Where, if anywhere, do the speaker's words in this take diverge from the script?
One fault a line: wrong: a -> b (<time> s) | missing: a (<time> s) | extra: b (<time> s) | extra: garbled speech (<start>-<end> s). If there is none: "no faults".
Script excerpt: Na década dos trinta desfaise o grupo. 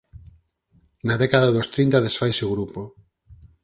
no faults